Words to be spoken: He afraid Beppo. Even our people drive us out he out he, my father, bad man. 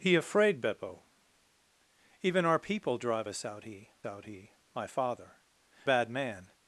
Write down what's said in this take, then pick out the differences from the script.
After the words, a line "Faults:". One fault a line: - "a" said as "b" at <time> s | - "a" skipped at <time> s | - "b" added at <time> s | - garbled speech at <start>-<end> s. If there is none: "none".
He afraid Beppo. Even our people drive us out he out he, my father, bad man.
Faults:
none